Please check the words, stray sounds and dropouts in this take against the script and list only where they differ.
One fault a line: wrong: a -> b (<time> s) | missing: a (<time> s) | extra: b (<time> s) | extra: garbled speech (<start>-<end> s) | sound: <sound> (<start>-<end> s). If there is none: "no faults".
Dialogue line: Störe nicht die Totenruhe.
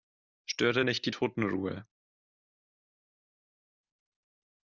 no faults